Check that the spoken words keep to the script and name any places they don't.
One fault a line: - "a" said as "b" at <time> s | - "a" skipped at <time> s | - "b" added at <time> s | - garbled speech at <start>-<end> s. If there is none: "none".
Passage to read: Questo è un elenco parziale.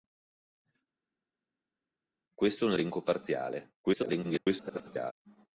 - garbled speech at 3.8-5.1 s